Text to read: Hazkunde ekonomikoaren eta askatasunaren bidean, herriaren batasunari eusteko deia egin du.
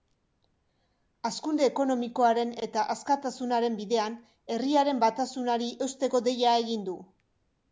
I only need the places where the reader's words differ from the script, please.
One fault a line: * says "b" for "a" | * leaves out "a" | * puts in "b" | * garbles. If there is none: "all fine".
all fine